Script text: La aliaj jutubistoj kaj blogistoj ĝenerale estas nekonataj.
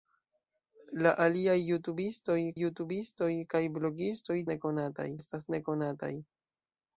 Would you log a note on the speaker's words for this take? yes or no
yes